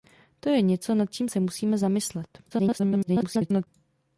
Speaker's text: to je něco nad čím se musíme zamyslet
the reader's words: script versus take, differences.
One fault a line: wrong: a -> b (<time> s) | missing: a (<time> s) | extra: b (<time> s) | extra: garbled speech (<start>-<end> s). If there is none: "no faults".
extra: garbled speech (2.5-3.7 s)